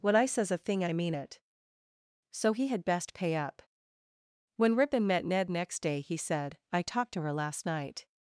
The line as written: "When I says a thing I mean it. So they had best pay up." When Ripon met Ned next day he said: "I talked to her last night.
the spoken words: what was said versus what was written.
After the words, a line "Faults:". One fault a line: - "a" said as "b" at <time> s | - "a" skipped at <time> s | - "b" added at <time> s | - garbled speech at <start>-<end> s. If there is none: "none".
"When I says a thing I mean it. So he had best pay up." When Ripon met Ned next day he said: "I talked to her last night.
Faults:
- "they" said as "he" at 2.5 s